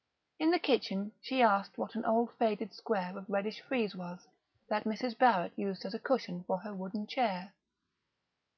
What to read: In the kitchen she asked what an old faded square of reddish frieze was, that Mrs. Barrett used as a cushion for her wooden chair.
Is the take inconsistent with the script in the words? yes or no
no